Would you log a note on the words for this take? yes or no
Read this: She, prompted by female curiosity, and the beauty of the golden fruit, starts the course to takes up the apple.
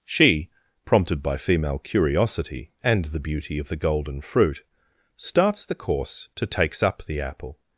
no